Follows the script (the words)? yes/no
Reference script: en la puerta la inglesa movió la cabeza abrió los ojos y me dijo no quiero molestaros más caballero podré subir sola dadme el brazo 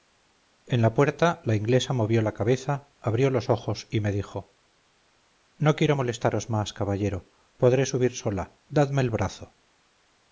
yes